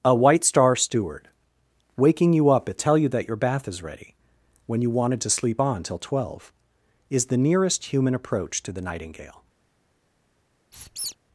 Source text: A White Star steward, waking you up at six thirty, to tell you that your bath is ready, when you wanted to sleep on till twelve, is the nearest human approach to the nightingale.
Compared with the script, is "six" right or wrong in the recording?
wrong